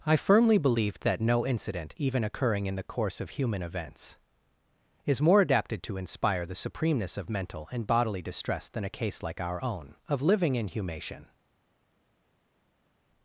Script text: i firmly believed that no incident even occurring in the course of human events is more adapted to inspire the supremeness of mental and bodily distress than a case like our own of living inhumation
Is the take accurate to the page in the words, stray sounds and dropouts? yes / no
yes